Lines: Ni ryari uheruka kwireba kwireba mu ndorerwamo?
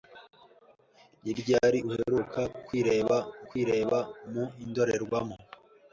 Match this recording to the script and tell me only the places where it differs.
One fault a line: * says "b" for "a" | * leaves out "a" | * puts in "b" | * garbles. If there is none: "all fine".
all fine